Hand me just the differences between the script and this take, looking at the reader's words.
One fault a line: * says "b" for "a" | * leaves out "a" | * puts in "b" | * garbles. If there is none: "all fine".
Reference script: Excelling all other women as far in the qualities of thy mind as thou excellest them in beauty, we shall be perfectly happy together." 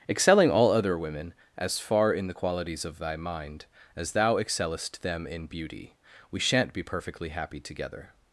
* says "shan't" for "shall"